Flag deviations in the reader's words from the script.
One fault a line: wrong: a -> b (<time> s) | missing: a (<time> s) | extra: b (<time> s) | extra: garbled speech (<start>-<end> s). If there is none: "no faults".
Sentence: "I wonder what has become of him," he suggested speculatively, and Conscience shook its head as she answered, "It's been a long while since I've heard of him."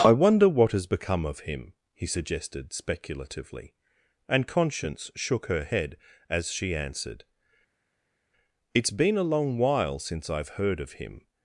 wrong: its -> her (5.5 s)